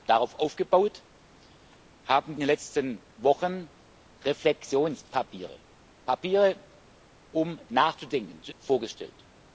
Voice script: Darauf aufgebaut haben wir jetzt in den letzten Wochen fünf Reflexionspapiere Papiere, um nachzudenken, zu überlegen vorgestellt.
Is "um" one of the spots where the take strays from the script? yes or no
no